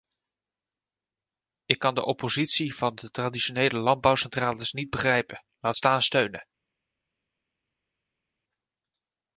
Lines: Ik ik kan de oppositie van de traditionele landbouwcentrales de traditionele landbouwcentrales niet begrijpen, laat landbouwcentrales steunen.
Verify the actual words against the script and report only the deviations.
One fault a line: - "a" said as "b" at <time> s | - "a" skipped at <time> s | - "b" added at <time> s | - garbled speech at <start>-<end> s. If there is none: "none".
- "ik" skipped at 1.8 s
- "de traditionele landbouwcentrales" skipped at 4.7 s
- "landbouwcentrales" said as "staan" at 5.7 s